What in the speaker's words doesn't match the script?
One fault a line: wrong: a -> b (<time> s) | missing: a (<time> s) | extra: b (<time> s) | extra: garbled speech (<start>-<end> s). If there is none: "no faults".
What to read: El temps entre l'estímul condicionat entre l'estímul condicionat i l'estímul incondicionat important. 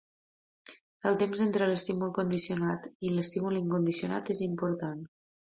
missing: entre l'estímul condicionat (2.9 s)
extra: és (4.4 s)